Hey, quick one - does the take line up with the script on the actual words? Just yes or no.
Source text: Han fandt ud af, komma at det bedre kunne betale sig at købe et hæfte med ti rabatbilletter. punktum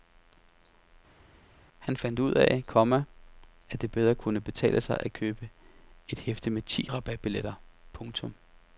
yes